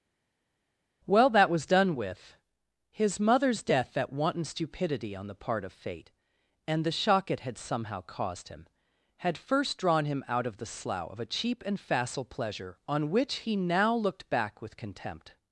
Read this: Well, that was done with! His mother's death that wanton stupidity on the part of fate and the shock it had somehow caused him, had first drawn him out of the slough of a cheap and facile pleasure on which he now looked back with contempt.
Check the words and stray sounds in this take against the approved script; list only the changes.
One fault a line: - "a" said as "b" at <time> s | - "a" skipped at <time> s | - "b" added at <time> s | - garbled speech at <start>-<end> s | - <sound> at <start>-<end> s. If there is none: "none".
none